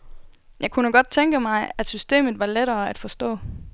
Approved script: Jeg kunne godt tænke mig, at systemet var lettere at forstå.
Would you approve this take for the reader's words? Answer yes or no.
yes